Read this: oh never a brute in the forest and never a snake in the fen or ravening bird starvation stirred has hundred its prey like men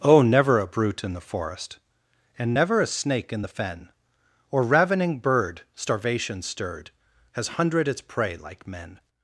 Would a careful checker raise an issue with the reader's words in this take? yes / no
no